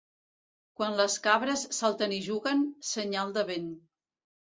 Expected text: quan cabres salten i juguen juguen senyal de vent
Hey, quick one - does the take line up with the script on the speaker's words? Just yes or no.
no